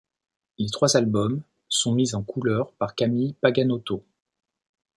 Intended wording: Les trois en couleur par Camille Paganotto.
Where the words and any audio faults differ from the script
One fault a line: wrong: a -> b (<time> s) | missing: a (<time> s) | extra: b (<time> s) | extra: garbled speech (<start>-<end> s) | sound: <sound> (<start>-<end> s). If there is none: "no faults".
extra: albums sont mis (1.0 s)